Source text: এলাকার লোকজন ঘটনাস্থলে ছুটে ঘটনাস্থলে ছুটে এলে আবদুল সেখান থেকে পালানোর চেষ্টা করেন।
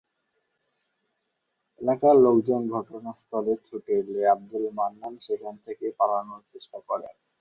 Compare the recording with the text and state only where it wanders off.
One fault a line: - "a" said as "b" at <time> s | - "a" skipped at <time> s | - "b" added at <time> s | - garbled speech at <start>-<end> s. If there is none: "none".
- "ঘটনাস্থলে ছুটে" skipped at 3.9 s
- "মান্নান" added at 4.8 s